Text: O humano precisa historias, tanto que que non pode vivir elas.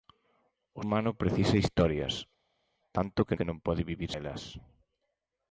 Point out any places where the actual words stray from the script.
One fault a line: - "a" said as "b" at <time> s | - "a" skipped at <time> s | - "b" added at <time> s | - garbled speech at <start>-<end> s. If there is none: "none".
none